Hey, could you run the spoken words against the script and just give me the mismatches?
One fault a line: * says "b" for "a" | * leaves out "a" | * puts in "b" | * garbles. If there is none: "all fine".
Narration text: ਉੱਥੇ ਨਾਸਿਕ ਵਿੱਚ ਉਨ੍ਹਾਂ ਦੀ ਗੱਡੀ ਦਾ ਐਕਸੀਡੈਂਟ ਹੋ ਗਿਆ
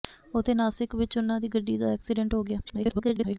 * garbles